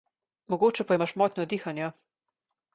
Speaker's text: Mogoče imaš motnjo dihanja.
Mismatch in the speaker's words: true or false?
true